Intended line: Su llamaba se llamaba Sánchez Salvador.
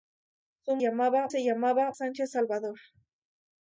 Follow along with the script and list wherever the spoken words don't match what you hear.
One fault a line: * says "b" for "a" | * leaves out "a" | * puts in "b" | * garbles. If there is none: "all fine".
all fine